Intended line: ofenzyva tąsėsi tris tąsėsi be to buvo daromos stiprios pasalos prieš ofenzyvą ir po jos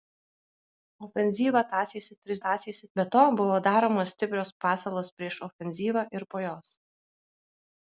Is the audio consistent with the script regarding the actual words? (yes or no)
yes